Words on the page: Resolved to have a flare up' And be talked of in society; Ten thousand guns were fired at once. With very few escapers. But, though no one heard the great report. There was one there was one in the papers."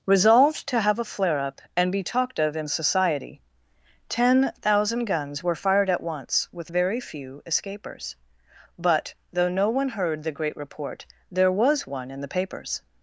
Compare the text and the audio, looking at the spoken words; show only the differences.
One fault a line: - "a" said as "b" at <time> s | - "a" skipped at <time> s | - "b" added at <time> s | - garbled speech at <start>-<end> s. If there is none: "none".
- "there was one" skipped at 12.1 s